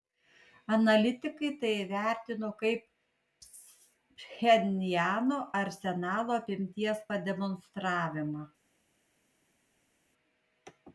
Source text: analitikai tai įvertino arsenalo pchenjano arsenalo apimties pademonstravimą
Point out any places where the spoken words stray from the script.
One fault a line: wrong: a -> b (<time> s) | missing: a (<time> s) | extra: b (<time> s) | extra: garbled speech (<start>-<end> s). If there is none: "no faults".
wrong: arsenalo -> kaip (2.6 s)